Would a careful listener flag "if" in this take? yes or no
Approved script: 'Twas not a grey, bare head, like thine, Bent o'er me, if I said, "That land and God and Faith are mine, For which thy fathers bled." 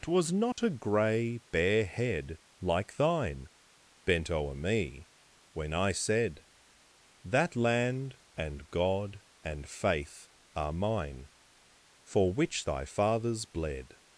yes